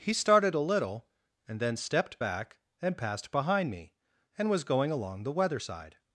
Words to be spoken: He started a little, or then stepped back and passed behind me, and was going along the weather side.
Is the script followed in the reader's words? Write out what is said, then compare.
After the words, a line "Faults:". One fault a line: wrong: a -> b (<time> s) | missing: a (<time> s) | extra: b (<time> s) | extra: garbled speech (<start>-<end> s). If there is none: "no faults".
He started a little, and then stepped back and passed behind me, and was going along the weather side.
Faults:
wrong: or -> and (1.5 s)